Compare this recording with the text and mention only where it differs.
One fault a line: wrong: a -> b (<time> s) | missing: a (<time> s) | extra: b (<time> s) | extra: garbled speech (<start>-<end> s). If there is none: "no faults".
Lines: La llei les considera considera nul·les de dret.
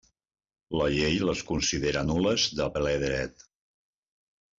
missing: considera (2.0 s)
extra: ple (2.8 s)